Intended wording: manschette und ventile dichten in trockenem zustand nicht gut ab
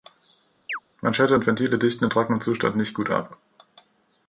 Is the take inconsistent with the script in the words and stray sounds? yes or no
yes